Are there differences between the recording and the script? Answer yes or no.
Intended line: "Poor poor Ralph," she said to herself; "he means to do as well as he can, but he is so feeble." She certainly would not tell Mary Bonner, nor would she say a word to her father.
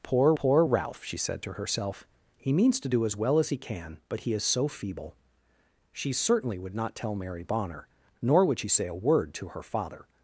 no